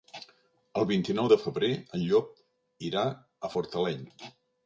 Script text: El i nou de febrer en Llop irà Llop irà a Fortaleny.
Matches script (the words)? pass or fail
fail